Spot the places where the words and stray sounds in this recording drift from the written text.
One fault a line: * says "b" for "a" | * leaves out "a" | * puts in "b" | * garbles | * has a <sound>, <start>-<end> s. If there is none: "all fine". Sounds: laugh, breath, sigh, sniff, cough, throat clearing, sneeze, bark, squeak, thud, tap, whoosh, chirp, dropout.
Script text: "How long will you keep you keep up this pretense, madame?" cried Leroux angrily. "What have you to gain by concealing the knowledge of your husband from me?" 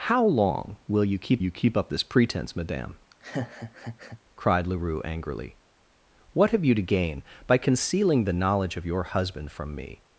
* has a laugh, 3.1-4.2 s